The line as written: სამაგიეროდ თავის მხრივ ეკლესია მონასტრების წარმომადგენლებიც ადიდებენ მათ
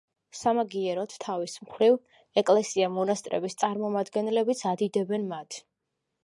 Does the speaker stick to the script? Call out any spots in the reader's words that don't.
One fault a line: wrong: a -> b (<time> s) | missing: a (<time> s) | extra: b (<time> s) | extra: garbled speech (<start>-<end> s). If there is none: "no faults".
no faults